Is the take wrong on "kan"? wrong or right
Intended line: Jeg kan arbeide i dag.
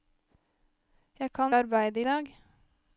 right